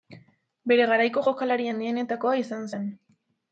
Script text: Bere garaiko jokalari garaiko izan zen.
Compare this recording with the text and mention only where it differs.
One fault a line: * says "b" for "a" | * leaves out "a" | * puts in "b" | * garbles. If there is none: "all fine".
* says "handienetakoa" for "garaiko"